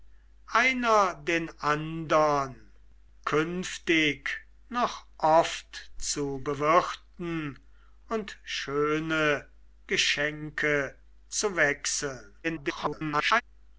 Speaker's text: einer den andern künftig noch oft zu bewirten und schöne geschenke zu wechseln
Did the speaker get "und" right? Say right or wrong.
right